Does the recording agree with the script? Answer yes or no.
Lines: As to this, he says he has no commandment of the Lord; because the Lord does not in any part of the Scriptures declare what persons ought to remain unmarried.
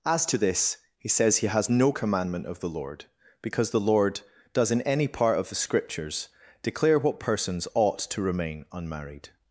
no